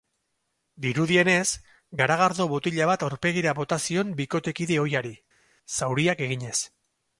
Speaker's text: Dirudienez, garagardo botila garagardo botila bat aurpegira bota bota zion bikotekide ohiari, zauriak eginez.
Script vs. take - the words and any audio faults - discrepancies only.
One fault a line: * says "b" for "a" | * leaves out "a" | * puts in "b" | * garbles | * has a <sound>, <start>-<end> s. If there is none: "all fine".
* leaves out "garagardo botila"
* leaves out "bota"